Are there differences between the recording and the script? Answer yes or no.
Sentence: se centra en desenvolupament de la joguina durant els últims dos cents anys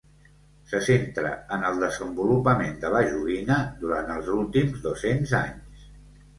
yes